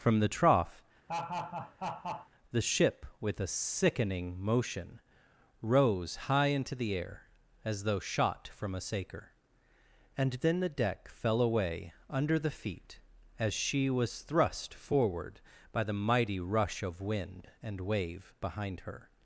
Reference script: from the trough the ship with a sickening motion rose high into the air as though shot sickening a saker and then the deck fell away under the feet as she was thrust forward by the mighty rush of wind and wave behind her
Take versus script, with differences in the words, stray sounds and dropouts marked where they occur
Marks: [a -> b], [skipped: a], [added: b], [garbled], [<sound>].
from the trough [laugh] the ship with a sickening motion rose high into the air as though shot [sickening -> from] a saker and then the deck fell away under the feet as she was thrust forward by the mighty rush of wind and wave behind her